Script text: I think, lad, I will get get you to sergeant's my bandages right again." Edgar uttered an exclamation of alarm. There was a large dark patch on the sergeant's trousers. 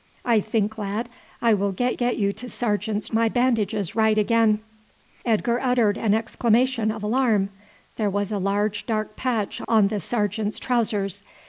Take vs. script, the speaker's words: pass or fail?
pass